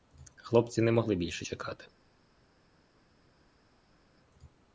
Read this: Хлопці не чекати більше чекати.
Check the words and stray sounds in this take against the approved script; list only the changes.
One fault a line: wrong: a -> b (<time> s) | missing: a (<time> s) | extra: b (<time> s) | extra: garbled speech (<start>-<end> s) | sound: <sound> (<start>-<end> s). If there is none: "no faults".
wrong: чекати -> могли (0.9 s)